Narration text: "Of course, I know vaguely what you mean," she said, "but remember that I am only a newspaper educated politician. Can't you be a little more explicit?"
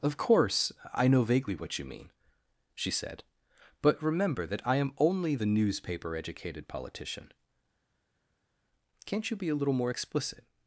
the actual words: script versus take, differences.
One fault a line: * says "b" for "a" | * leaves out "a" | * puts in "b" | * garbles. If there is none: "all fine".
* says "the" for "a"